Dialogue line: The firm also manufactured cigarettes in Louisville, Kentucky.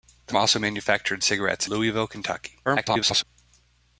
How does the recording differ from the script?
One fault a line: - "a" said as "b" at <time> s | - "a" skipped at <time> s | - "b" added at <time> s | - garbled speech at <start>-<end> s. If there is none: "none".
- "firm" skipped at 0.3 s
- "in" skipped at 1.7 s
- garbled speech at 2.6-3.2 s